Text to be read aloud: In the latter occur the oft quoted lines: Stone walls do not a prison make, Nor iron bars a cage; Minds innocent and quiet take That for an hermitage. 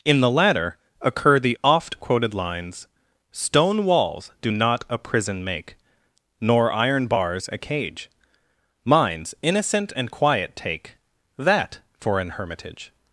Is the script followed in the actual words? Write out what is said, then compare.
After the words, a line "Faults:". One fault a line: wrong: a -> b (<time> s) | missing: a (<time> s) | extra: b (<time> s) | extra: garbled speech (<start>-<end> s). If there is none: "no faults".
In the latter occur the oft quoted lines: Stone walls do not a prison make, Nor iron bars a cage; Minds innocent and quiet take That for an hermitage.
Faults:
no faults